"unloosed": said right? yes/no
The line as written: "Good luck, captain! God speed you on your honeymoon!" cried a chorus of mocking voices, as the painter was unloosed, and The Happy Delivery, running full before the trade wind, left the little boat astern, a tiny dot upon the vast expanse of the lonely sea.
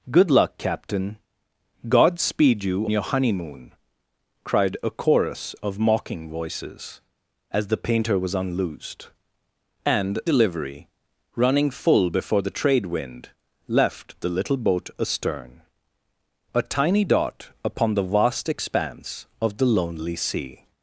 yes